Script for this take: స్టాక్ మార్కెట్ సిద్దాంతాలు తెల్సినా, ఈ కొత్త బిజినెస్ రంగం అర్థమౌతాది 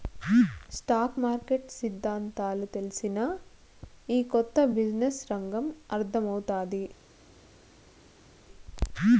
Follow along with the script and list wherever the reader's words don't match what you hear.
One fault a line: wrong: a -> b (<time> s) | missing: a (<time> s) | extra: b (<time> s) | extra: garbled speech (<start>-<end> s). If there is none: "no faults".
no faults